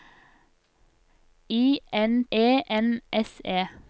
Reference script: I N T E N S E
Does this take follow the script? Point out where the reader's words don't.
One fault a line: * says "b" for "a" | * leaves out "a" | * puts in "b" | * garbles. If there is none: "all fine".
* leaves out "T"